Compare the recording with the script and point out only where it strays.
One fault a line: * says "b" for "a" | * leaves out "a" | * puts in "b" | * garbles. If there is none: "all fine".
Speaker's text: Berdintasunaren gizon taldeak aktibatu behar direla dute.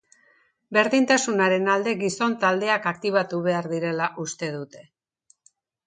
* puts in "alde"
* puts in "uste"